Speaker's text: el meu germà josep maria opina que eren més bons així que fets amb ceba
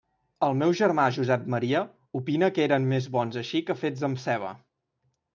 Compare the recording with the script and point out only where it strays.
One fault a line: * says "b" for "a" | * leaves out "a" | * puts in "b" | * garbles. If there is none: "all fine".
all fine